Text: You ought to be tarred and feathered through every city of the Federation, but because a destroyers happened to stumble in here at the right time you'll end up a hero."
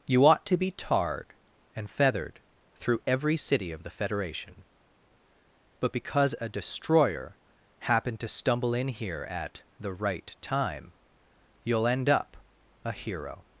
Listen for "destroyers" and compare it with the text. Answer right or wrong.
wrong